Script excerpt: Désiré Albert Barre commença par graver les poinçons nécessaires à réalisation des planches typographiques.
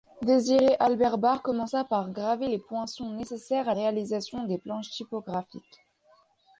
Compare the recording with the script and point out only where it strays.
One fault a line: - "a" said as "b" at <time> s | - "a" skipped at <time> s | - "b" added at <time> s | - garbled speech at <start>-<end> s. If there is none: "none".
none